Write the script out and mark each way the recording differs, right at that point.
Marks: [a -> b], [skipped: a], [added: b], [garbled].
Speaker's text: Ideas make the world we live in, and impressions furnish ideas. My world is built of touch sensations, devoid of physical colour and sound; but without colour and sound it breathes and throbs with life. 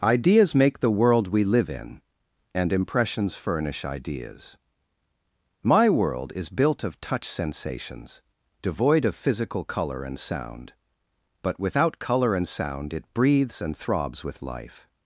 Ideas make the world we live in, and impressions furnish ideas. My world is built of touch sensations, devoid of physical colour and sound; but without colour and sound it breathes and throbs with life.